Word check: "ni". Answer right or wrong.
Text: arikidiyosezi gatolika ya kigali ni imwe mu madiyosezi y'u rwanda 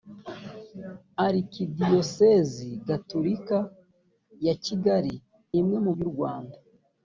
wrong